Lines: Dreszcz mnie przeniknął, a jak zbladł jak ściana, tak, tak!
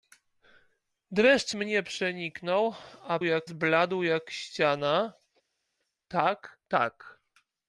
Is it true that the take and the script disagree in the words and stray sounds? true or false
false